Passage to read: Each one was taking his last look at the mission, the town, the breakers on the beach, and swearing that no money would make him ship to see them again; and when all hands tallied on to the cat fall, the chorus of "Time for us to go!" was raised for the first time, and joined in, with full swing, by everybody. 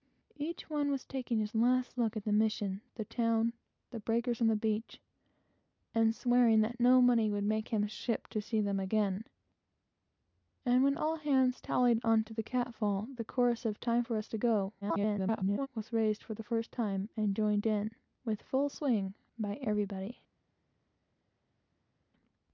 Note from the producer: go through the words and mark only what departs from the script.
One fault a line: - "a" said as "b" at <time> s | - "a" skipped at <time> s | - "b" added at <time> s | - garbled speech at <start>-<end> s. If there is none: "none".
- garbled speech at 14.8-15.7 s